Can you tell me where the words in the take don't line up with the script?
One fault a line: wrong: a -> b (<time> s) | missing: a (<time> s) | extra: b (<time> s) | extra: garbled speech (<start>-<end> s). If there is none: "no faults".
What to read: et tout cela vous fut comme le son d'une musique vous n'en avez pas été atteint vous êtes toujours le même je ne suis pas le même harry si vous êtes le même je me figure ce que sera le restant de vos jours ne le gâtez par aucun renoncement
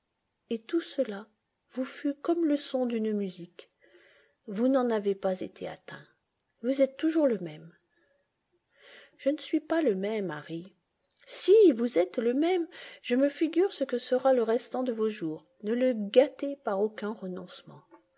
no faults